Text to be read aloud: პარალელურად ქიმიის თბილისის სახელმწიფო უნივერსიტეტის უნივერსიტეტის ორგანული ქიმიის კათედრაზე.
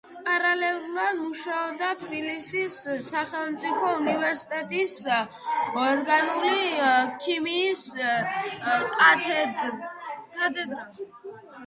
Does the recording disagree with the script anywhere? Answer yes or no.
yes